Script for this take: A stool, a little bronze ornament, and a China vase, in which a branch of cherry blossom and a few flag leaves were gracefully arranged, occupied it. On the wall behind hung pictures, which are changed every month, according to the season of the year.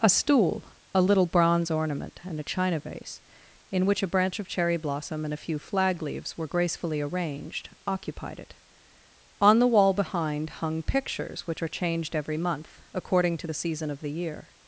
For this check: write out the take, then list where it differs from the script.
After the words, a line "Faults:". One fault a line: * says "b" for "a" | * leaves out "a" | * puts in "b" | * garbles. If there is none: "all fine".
A stool, a little bronze ornament, and a China vase, in which a branch of cherry blossom and a few flag leaves were gracefully arranged, occupied it. On the wall behind hung pictures, which are changed every month, according to the season of the year.
Faults:
all fine